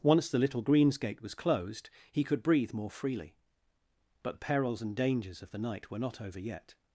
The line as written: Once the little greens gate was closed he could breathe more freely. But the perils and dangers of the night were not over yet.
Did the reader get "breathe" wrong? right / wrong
right